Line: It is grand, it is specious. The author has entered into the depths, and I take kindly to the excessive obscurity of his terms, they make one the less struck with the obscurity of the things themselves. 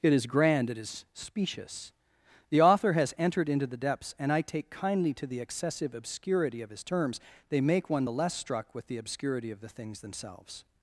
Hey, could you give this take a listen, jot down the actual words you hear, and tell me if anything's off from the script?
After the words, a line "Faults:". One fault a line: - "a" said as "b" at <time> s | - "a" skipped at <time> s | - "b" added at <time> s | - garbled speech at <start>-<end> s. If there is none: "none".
It is grand, it is specious. The author has entered into the depths, and I take kindly to the excessive obscurity of his terms, they make one the less struck with the obscurity of the things themselves.
Faults:
none